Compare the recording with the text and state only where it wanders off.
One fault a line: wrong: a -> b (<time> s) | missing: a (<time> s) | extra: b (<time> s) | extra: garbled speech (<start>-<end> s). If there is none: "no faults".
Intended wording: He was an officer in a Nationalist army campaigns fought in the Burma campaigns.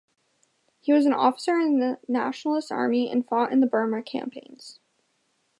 wrong: a -> the (1.8 s)
wrong: campaigns -> and (3.1 s)